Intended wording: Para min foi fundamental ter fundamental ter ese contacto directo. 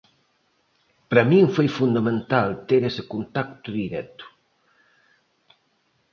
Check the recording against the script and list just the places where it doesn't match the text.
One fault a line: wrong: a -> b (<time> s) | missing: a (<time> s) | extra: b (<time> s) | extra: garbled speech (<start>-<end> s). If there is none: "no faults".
missing: fundamental ter (2.8 s)